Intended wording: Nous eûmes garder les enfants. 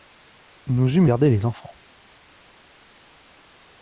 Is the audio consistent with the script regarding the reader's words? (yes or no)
yes